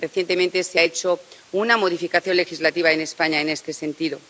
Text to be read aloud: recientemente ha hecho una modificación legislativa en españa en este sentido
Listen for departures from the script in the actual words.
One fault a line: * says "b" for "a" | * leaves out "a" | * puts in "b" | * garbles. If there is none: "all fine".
* puts in "se"